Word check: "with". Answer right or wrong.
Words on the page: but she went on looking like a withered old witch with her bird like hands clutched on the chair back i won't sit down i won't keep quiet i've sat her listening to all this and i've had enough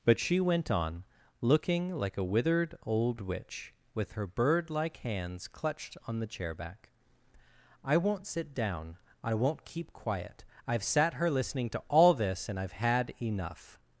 right